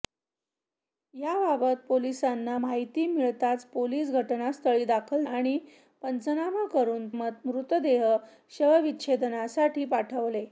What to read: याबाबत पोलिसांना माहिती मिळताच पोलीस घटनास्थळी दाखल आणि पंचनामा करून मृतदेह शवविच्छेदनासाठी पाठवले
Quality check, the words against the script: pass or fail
pass